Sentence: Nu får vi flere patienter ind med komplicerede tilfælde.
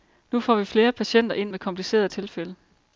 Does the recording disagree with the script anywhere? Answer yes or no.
no